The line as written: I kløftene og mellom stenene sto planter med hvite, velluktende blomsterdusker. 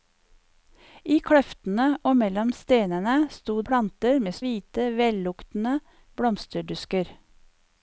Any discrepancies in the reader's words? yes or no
no